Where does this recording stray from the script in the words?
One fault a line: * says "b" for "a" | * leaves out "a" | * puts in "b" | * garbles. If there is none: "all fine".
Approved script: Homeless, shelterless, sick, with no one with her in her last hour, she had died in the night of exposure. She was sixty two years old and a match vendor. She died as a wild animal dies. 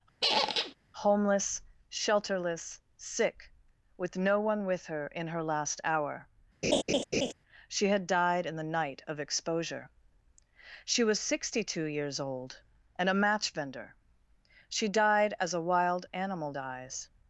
all fine